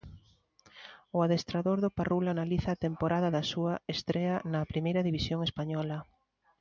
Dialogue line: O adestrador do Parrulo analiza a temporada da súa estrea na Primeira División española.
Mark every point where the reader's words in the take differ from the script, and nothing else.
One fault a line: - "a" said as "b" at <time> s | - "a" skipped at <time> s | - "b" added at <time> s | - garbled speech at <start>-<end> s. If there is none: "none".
none